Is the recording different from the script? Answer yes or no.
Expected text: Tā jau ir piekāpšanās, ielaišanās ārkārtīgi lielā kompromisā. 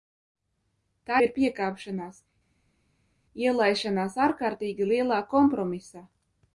yes